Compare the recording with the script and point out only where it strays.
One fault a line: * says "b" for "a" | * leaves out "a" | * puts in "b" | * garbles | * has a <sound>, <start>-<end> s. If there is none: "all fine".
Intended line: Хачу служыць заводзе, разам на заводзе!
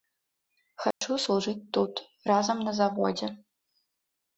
* has a dropout, 0.9-1.0 s
* says "тут" for "заводзе"